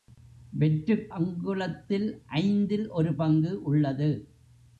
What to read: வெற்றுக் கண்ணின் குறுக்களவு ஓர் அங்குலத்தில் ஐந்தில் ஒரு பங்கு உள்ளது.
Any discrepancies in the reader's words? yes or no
yes